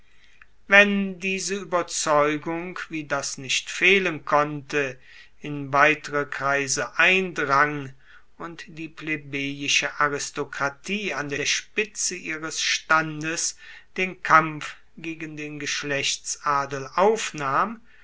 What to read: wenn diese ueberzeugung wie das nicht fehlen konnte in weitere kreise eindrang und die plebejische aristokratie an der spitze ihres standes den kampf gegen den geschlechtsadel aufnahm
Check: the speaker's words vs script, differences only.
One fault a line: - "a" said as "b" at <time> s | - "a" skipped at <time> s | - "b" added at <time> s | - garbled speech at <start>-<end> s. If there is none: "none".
- "der" added at 11.3 s